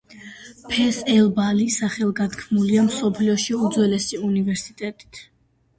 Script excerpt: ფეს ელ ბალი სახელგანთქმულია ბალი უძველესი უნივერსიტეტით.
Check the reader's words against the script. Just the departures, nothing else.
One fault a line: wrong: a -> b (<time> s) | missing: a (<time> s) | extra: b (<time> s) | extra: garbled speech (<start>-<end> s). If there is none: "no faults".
wrong: ბალი -> მსოფლიოში (2.9 s)